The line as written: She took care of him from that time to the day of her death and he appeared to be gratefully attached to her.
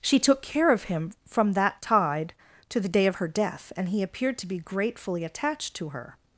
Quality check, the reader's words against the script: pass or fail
fail